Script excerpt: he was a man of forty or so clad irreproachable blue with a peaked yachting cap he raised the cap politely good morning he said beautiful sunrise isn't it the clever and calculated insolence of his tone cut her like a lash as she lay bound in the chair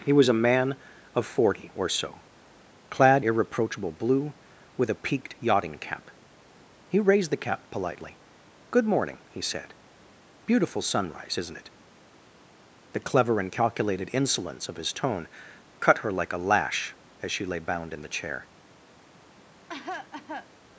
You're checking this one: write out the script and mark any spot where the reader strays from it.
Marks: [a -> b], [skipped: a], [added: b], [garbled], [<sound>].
he was a man of forty or so clad irreproachable blue with a peaked yachting cap he raised the cap politely good morning he said beautiful sunrise isn't it the clever and calculated insolence of his tone cut her like a lash as she lay bound in the chair [cough]